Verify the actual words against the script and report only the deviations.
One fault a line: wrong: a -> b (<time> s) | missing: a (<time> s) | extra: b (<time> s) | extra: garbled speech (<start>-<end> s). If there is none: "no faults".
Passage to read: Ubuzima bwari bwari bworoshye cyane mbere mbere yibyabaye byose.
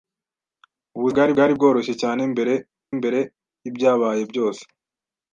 no faults